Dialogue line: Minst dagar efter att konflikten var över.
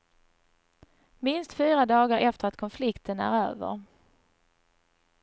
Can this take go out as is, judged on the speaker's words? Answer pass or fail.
fail